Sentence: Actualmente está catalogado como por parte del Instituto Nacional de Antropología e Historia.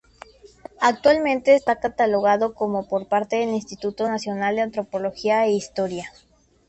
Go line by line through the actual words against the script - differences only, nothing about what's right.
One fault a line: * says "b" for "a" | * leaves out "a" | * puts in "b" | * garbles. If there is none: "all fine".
all fine